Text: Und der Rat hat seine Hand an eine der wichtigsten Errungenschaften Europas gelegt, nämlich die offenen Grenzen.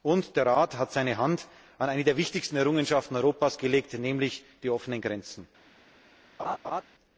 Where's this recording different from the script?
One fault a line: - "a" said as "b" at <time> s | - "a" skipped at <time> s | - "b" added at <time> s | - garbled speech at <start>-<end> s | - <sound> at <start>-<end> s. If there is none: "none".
- laugh at 6.4-6.8 s